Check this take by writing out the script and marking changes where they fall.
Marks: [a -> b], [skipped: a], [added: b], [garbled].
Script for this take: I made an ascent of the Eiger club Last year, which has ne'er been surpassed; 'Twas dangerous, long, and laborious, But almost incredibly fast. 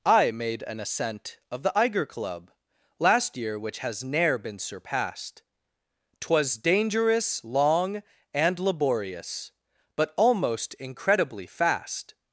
I made an ascent of the Eiger club Last year, which has ne'er been surpassed; 'Twas dangerous, long, and laborious, But almost incredibly fast.